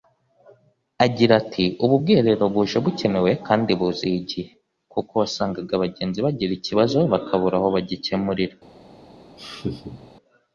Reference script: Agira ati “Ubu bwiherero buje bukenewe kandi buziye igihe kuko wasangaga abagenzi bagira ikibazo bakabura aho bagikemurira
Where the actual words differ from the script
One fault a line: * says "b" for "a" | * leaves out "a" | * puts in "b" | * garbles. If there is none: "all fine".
all fine